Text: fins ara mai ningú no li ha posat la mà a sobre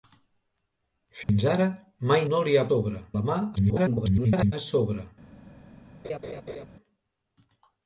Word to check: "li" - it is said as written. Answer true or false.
true